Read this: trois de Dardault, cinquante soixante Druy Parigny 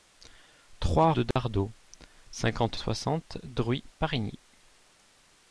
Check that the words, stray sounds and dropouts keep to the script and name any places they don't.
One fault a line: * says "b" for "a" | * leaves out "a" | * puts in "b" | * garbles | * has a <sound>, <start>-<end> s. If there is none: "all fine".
* has a dropout, 1.3-1.4 s